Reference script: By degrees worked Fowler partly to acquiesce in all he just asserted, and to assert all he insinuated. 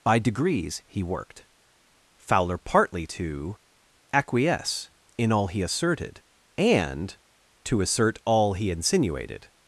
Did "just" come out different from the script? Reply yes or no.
yes